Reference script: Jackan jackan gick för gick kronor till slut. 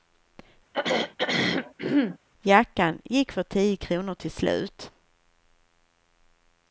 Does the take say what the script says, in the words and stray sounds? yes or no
no